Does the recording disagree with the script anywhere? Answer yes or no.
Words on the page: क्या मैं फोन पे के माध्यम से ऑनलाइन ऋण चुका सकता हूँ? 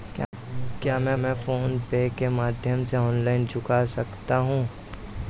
yes